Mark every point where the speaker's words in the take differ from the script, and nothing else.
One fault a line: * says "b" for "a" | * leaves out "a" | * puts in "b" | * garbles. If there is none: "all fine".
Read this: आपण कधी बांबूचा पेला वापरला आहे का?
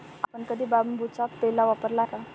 * leaves out "आहे"